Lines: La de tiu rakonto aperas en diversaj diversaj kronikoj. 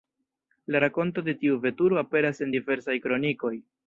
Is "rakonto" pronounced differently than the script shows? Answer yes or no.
yes